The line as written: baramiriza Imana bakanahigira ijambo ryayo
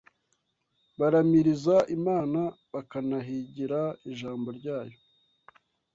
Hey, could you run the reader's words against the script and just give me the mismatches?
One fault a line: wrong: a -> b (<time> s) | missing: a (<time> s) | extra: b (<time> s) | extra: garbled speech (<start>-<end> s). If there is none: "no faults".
no faults